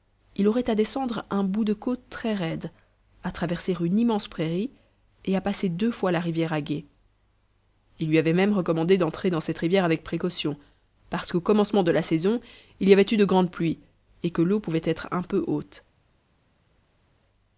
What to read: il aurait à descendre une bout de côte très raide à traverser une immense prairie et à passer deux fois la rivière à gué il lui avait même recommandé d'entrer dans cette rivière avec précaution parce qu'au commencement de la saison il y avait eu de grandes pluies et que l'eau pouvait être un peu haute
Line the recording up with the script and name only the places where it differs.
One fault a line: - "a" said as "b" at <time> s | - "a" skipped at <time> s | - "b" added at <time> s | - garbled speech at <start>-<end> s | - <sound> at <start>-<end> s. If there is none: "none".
- "une" said as "un" at 1.3 s